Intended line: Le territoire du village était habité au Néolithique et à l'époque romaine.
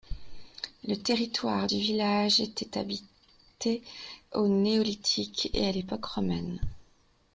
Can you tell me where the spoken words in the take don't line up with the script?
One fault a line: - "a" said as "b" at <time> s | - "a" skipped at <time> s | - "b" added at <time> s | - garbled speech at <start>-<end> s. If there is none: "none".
none